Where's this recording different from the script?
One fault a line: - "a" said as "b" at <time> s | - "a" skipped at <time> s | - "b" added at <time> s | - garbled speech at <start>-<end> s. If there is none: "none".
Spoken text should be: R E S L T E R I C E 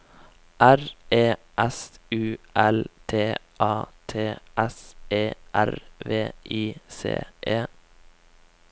- "U" added at 2.1 s
- "A T S" added at 3.6 s
- "V" added at 6.0 s